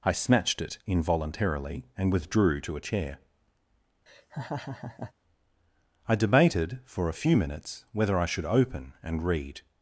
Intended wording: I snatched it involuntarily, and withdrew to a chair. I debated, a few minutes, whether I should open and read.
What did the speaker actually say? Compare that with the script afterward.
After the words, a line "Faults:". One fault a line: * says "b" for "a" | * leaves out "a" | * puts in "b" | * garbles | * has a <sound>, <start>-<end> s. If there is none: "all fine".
I snatched it involuntarily, and withdrew to a chair. I debated, for a few minutes, whether I should open and read.
Faults:
* has a laugh, 4.1-5.1 s
* puts in "for"